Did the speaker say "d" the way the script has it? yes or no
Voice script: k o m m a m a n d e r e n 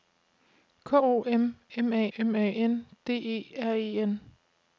yes